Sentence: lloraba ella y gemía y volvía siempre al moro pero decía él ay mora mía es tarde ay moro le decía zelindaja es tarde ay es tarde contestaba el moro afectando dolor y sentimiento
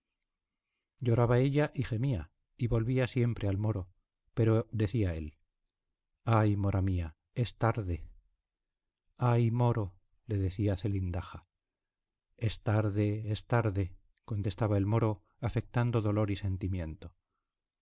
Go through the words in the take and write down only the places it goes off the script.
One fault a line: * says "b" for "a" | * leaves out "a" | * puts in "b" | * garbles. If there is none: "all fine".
* leaves out "ay"